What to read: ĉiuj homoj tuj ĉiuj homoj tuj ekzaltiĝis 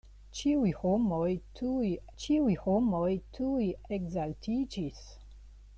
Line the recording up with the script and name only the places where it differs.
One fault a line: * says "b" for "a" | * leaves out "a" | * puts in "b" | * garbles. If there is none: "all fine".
all fine